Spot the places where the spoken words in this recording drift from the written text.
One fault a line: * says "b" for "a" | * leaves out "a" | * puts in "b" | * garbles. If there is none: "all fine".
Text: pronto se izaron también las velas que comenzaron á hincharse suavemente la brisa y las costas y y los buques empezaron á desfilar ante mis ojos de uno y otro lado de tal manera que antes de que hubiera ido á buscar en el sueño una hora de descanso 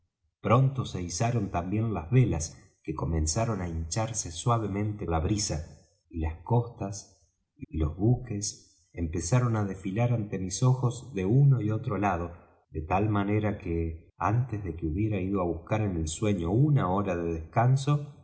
all fine